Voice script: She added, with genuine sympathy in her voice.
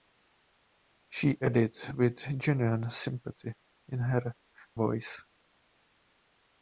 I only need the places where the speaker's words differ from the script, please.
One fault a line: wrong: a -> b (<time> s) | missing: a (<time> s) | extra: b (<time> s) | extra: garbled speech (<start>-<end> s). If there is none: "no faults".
no faults